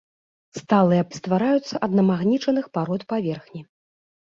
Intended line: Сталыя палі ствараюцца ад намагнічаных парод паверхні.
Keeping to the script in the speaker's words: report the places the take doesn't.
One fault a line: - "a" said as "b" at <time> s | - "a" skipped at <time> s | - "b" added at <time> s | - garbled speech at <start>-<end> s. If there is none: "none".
- "палі" skipped at 1.0 s